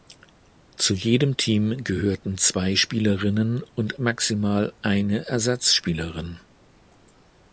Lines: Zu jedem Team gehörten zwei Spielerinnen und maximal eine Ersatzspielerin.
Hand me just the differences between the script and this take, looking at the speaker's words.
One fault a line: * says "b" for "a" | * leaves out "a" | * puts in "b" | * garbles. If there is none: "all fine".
all fine